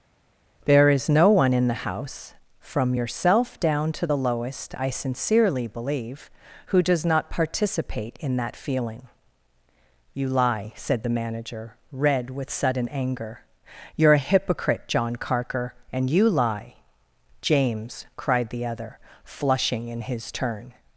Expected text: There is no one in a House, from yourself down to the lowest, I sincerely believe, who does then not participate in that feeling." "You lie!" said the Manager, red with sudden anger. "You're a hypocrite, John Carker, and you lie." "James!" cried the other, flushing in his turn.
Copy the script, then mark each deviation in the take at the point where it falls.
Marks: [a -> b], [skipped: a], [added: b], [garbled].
There is no one in [a -> the] House, from yourself down to the lowest, I sincerely believe, who does [skipped: then] not participate in that feeling." "You lie!" said the Manager, red with sudden anger. "You're a hypocrite, John Carker, and you lie." "James!" cried the other, flushing in his turn.